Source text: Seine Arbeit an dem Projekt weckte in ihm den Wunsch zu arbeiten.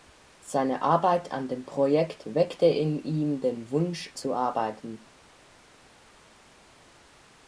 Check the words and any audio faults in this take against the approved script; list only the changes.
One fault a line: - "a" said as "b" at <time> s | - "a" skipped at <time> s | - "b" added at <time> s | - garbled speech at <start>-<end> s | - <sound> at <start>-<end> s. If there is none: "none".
none